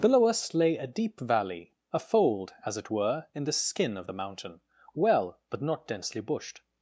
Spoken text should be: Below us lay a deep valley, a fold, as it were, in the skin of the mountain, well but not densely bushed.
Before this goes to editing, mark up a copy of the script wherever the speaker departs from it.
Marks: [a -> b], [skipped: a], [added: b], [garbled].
Below us lay a deep valley, a fold, as it were, in the skin of the mountain, well but not densely bushed.